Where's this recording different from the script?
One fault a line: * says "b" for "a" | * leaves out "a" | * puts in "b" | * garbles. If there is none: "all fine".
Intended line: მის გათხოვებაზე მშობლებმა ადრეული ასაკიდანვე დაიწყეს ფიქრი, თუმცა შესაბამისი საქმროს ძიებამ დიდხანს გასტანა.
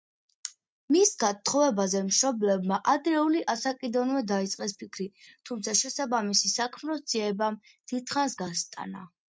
all fine